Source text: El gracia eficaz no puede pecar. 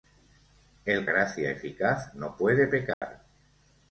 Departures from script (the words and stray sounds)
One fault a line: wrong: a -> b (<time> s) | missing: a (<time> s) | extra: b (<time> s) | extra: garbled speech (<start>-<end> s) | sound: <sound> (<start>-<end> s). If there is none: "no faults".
sound: dropout (2.9-3.0 s)